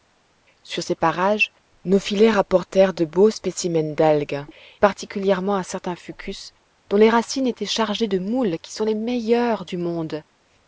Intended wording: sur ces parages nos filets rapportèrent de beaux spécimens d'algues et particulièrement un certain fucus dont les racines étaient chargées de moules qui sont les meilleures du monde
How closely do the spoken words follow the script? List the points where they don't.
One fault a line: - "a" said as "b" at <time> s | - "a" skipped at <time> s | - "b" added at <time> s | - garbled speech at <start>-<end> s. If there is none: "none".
- "et" skipped at 4.4 s